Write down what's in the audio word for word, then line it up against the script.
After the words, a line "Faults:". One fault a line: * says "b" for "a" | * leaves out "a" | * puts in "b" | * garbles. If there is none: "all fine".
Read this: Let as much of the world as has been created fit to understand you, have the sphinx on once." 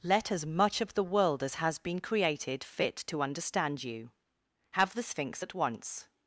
Let as much of the world as has been created fit to understand you, have the sphinx at once."
Faults:
* says "at" for "on"